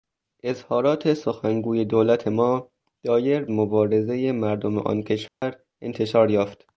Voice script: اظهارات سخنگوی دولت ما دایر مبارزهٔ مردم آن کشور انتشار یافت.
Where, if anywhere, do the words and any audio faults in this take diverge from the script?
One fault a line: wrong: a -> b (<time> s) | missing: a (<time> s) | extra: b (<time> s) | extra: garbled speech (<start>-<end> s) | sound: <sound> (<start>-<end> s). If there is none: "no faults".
sound: dropout (5.3-5.4 s)